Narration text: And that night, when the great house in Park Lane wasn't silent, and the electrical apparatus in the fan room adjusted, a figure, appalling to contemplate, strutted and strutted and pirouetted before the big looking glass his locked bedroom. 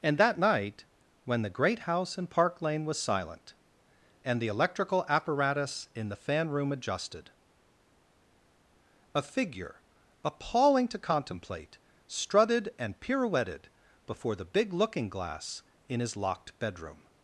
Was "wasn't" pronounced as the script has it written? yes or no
no